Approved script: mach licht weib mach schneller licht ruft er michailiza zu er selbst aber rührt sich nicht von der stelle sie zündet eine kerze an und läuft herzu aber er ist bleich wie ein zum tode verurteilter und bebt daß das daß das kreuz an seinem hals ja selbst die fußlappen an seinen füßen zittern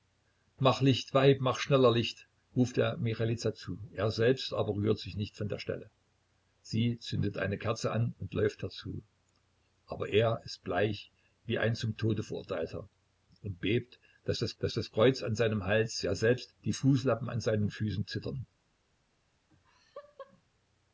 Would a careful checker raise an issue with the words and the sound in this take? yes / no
yes